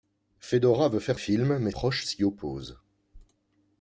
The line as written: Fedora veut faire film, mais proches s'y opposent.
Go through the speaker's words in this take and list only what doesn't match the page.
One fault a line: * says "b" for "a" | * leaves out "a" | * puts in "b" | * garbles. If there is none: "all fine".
all fine